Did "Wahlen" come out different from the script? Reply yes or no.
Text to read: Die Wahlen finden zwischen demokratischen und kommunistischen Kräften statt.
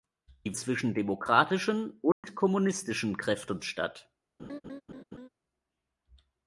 yes